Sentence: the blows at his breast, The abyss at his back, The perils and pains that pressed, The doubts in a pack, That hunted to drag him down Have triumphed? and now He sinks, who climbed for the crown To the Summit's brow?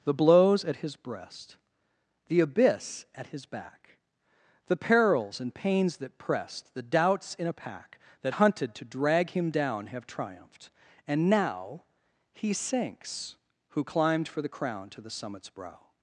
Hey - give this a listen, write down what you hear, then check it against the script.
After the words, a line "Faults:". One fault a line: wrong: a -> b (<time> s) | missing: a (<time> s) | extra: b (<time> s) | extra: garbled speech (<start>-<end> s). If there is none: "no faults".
the blows at his breast, The abyss at his back, The perils and pains that pressed, The doubts in a pack, That hunted to drag him down Have triumphed? and now He sinks, who climbed for the crown To the Summit's brow?
Faults:
no faults